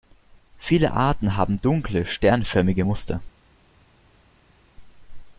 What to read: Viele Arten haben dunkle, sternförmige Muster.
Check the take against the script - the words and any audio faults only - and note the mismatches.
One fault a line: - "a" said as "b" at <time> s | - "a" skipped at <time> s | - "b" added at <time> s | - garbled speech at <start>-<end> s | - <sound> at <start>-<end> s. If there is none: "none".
none